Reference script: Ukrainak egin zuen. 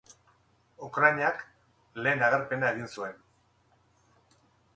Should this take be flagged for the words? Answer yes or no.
yes